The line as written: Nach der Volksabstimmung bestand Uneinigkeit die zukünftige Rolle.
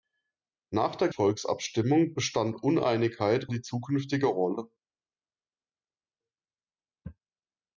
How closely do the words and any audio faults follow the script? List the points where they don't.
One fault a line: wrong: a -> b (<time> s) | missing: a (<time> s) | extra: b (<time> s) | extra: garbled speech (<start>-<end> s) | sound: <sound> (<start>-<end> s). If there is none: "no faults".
no faults